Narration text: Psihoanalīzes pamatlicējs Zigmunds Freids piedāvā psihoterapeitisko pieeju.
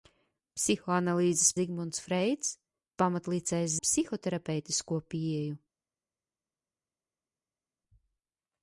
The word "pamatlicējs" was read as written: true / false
false